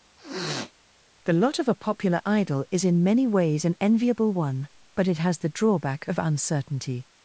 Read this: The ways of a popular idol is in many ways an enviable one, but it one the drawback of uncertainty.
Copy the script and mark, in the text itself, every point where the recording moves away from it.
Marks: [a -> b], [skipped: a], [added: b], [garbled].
The [ways -> lot] of a popular idol is in many ways an enviable one, but it [one -> has] the drawback of uncertainty.